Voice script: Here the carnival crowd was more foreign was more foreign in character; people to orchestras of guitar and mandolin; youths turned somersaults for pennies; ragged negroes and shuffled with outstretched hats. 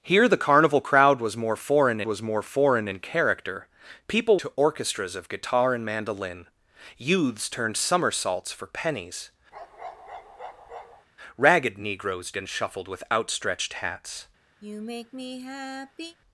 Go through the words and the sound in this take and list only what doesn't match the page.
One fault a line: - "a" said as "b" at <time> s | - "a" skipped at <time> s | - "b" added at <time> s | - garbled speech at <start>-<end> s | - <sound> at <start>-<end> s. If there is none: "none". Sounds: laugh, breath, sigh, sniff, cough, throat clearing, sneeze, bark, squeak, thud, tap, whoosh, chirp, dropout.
- bark at 9.5-11.1 s
- sigh at 14.6-16.2 s